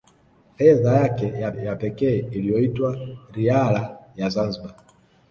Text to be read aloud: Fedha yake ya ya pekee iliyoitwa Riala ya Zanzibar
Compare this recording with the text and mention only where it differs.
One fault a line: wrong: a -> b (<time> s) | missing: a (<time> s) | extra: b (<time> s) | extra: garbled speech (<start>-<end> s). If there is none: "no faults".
no faults